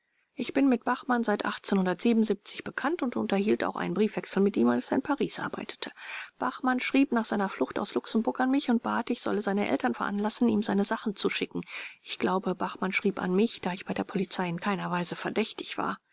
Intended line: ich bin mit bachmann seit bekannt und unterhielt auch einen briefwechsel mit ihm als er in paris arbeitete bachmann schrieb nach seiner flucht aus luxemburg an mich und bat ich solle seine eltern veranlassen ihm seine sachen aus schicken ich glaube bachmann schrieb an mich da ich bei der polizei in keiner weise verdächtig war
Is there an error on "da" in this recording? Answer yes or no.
no